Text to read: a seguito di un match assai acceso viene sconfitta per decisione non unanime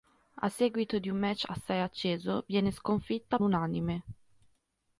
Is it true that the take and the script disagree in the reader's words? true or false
true